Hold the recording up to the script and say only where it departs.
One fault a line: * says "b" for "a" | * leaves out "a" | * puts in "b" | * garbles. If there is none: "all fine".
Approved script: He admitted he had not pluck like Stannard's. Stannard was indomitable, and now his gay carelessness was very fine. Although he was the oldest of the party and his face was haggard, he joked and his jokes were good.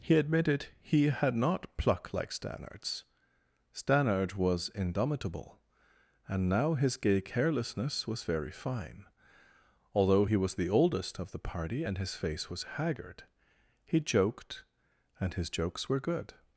all fine